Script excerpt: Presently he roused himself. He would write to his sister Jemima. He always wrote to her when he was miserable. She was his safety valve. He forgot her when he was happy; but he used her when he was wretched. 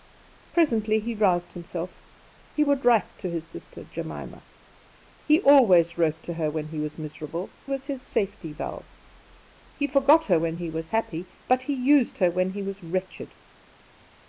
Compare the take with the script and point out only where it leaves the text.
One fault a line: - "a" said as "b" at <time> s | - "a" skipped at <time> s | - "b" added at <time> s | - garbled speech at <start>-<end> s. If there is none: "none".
- "She" skipped at 7.5 s